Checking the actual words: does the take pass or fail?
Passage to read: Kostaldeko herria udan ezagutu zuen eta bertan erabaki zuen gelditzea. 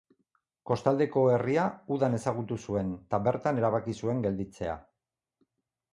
pass